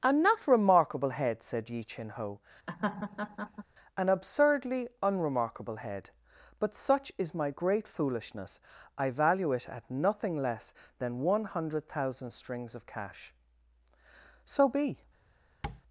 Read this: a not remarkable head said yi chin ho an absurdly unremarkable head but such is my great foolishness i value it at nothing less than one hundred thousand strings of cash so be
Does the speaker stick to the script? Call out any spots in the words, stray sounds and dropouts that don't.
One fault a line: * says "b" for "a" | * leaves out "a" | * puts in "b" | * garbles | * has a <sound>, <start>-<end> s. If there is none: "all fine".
* has a laugh, 2.7-3.6 s
* has a tap, 15.6-15.8 s